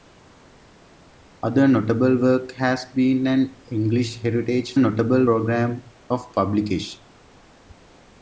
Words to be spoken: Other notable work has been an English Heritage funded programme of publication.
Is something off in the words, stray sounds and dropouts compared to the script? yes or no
yes